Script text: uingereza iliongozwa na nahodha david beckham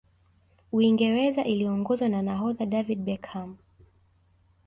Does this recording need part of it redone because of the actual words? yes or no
no